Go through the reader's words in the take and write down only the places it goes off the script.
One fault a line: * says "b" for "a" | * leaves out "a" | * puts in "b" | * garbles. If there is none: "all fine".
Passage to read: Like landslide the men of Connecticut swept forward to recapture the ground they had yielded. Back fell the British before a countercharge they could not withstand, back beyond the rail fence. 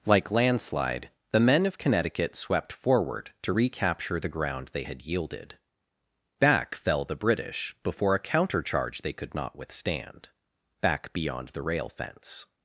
all fine